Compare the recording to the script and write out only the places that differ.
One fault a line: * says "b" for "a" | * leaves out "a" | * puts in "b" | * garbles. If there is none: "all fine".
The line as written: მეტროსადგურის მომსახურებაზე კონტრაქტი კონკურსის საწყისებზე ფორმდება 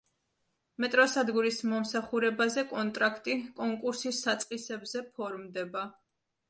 all fine